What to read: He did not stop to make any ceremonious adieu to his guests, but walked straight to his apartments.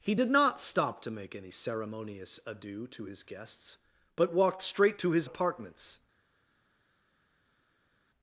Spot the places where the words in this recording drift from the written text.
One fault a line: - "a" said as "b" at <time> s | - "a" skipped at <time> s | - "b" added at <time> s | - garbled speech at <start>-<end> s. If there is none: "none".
none